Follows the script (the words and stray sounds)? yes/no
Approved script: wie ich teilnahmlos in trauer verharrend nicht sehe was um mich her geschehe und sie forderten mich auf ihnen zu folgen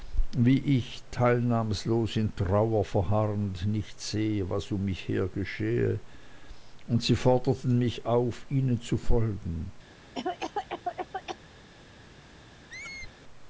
no